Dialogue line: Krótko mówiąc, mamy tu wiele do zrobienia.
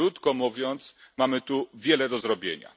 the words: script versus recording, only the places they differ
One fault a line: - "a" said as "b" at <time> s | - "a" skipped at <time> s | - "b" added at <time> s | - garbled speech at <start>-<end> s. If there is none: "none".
none